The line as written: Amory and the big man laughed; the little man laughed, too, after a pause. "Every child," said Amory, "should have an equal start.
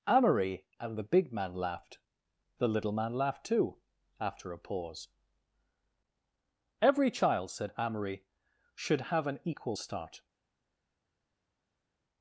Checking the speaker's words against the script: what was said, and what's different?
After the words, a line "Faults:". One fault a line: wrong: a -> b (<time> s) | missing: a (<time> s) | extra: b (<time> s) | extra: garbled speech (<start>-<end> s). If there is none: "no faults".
Amory and the big man laughed; the little man laughed, too, after a pause. "Every child," said Amory, "should have an equal start.
Faults:
no faults